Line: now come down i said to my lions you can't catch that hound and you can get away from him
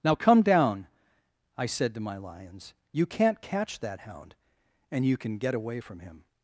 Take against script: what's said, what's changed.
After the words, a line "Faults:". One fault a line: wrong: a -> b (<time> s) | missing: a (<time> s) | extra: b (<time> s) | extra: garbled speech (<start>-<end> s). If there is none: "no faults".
now come down i said to my lions you can't catch that hound and you can get away from him
Faults:
no faults